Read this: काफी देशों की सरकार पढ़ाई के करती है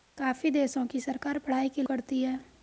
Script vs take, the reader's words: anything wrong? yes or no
no